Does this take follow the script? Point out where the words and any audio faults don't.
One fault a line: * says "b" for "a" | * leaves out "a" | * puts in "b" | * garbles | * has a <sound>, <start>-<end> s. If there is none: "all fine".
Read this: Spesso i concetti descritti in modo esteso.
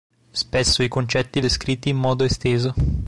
all fine